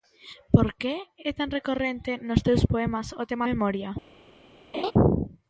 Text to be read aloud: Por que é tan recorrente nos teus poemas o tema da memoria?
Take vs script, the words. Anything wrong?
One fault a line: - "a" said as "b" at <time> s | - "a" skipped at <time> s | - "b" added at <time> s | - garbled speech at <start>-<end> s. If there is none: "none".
- "da" skipped at 3.5 s